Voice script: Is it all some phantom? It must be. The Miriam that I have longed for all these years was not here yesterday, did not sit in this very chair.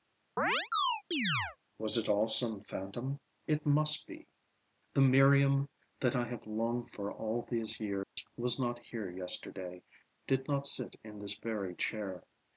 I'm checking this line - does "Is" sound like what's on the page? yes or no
no